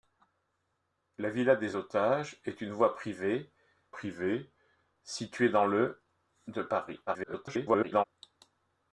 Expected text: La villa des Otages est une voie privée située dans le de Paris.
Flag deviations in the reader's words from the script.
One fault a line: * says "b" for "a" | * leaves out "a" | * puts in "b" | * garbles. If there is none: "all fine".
* puts in "privée"
* garbles